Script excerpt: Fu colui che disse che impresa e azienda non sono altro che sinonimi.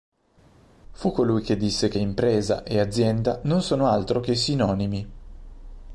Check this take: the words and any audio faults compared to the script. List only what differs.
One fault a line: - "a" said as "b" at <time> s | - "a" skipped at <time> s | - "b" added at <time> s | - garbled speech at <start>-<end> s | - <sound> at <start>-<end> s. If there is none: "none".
none